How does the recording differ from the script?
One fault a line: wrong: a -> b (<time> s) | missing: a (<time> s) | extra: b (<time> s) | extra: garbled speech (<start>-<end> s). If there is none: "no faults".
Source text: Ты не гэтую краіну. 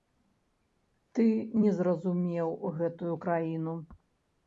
extra: зразумеў (1.8 s)